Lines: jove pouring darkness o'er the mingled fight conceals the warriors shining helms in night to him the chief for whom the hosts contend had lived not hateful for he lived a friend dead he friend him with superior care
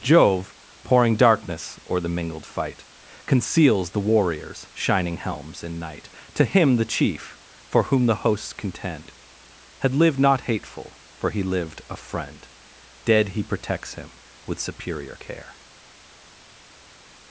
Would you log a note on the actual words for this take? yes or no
yes